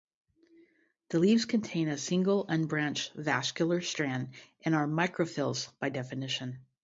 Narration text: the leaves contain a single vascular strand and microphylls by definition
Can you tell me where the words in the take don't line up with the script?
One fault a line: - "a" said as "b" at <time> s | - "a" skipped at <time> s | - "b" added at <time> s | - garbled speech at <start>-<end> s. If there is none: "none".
- "unbranched" added at 2.5 s
- "are" added at 4.7 s